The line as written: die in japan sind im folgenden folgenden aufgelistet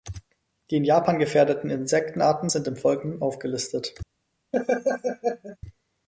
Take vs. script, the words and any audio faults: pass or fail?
fail